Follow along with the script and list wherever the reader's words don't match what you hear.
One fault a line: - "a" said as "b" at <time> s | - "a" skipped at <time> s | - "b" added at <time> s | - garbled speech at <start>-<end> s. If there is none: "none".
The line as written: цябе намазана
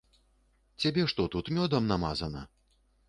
- "што тут мёдам" added at 1.1 s